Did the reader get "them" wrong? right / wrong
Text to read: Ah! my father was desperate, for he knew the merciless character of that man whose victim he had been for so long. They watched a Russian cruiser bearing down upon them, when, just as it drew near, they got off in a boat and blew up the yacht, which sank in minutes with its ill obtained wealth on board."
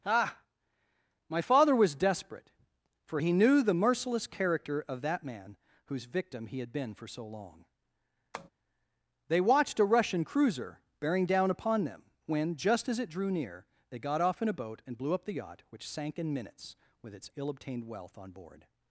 right